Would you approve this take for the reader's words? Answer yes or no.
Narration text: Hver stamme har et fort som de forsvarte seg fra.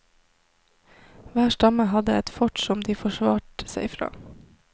no